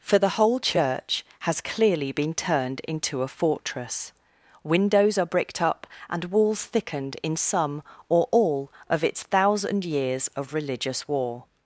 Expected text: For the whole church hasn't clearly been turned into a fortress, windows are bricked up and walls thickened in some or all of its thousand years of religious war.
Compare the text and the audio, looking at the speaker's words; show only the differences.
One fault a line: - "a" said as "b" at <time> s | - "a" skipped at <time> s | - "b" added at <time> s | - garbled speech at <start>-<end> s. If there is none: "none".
- "hasn't" said as "has" at 1.4 s